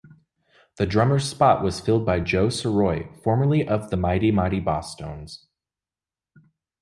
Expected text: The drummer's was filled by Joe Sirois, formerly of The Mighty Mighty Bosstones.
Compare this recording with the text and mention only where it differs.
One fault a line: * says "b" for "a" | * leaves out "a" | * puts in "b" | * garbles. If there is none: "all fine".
* puts in "spot"